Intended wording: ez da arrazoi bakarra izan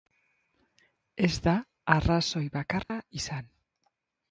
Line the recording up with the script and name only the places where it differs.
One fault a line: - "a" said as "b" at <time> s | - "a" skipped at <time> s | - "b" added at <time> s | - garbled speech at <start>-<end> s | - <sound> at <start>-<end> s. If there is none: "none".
- dropout at 2.8-2.9 s